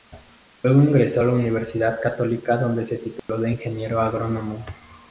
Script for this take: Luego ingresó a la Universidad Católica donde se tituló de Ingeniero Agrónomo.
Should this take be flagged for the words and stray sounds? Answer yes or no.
yes